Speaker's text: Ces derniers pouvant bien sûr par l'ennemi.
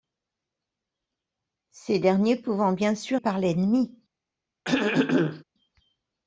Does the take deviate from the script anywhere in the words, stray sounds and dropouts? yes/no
yes